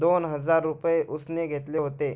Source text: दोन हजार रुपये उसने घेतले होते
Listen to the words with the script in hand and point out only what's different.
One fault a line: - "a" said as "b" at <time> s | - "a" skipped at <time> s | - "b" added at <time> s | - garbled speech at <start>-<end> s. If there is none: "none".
none